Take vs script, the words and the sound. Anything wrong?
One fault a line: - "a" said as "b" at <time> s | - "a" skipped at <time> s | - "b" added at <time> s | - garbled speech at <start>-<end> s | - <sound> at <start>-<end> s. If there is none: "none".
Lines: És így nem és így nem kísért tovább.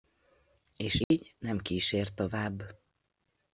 - dropout at 1.0-1.1 s
- "és így nem" skipped at 1.6 s